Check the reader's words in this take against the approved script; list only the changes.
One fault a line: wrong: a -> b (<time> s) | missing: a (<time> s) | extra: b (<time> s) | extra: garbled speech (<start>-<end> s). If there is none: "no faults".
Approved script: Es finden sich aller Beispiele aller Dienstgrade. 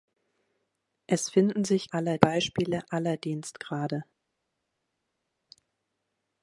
no faults